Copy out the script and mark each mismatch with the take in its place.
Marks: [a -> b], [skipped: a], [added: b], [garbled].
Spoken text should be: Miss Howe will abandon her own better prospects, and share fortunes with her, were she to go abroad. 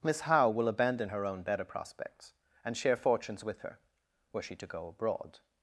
Miss Howe will abandon her own better prospects, and share fortunes with her, were she to go abroad.